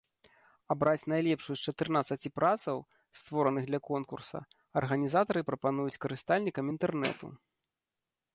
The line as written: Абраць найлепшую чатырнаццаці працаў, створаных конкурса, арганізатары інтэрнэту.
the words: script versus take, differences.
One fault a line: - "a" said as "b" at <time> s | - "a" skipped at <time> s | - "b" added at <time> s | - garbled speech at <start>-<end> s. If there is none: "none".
- "з" added at 1.6 s
- "для" added at 3.7 s
- "прапануюць карыстальнікам" added at 5.5 s